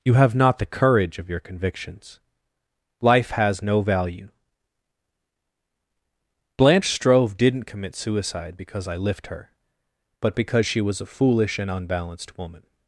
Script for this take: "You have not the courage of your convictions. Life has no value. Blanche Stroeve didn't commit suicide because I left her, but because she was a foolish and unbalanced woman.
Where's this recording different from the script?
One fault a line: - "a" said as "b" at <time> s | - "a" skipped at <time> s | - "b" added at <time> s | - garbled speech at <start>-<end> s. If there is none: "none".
- "left" said as "lift" at 9.0 s